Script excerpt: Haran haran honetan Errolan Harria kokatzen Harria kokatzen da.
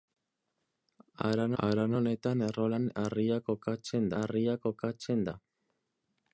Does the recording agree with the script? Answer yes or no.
yes